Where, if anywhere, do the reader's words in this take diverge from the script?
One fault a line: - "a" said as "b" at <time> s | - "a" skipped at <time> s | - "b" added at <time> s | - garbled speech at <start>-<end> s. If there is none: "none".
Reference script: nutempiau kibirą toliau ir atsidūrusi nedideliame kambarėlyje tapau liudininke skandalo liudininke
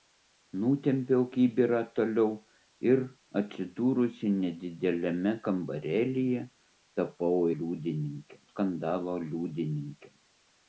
none